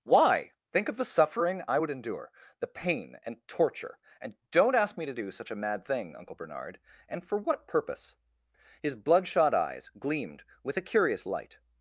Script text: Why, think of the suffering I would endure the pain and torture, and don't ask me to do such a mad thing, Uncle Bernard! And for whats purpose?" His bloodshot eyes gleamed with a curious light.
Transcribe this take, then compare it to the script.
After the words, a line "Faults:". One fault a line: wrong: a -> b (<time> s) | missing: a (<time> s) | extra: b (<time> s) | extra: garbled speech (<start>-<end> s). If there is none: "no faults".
Why, think of the suffering I would endure the pain and torture, and don't ask me to do such a mad thing, Uncle Bernard! And for what purpose?" His bloodshot eyes gleamed with a curious light.
Faults:
wrong: whats -> what (7.4 s)